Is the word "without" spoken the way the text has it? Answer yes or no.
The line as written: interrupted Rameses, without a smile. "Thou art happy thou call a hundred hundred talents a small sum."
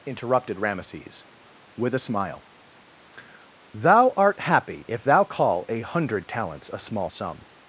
no